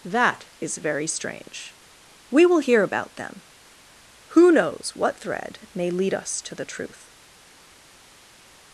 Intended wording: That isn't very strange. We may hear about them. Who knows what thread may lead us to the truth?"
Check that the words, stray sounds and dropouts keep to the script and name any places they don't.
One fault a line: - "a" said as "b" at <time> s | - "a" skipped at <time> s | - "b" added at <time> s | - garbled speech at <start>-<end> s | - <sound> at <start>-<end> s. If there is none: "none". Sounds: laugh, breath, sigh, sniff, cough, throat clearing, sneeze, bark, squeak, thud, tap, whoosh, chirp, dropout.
- "isn't" said as "is" at 0.6 s
- "may" said as "will" at 2.5 s